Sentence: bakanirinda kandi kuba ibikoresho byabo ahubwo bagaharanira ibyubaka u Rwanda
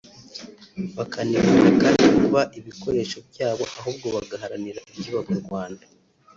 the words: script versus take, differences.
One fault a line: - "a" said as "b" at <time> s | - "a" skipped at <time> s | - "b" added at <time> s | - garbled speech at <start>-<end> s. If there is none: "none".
none